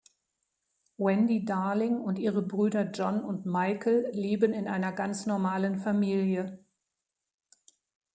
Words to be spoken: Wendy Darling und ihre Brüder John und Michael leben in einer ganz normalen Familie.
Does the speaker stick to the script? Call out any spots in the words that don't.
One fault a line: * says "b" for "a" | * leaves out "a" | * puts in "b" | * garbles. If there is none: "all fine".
all fine